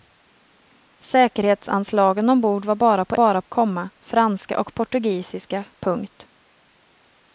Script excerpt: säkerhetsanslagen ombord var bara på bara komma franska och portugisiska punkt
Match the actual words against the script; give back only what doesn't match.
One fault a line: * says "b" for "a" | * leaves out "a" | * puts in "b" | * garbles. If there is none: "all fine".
all fine